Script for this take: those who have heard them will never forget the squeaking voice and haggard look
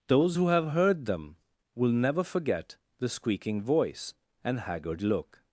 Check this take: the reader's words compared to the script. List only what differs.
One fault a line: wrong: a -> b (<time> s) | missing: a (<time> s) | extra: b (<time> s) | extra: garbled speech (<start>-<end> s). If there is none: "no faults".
no faults